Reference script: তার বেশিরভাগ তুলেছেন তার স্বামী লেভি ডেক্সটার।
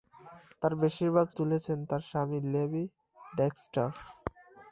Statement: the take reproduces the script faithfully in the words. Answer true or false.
true